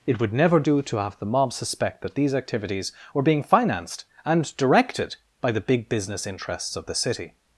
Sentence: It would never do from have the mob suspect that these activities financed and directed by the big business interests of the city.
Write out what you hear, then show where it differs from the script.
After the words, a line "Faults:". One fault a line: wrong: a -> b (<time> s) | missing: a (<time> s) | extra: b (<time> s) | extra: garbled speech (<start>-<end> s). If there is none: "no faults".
It would never do to have the mob suspect that these activities were being financed and directed by the big business interests of the city.
Faults:
wrong: from -> to (0.8 s)
extra: were being (3.1 s)